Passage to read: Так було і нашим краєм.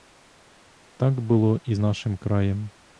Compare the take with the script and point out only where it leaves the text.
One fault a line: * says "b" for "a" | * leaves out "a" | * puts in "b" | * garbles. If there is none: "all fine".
all fine